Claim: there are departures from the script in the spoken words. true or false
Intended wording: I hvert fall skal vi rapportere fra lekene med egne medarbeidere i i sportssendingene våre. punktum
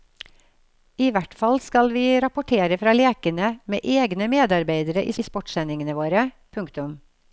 false